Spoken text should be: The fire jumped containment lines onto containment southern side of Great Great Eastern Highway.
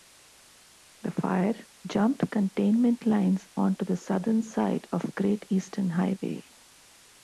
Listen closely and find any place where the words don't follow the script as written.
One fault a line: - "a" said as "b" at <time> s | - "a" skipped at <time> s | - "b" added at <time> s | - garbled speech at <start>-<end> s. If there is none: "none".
- "containment" said as "the" at 3.9 s
- "Great" skipped at 5.5 s